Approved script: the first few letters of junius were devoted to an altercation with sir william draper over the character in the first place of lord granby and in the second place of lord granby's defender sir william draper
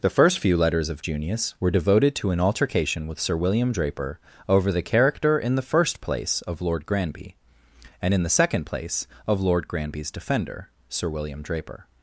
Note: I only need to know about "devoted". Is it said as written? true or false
true